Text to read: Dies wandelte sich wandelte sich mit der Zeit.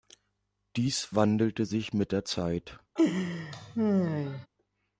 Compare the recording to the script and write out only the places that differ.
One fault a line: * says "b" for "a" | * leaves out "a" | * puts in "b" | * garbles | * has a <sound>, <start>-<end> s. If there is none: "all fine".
* leaves out "wandelte sich"
* has a laugh, 3.0-4.5 s